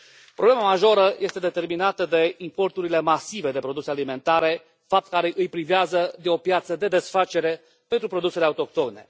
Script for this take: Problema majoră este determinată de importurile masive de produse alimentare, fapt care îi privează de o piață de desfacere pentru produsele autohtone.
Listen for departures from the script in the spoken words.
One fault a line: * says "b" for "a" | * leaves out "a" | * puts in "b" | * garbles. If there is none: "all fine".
all fine